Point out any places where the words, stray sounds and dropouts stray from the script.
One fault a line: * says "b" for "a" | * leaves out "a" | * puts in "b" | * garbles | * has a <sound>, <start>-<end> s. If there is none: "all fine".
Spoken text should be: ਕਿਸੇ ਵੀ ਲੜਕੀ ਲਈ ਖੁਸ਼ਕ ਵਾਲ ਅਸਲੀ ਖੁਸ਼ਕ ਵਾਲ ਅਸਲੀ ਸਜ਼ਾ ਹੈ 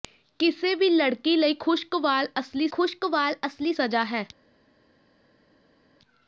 all fine